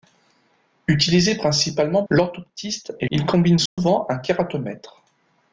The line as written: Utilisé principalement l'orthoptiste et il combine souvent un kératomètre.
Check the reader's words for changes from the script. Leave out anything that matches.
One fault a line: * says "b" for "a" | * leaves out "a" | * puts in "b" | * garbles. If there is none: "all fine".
all fine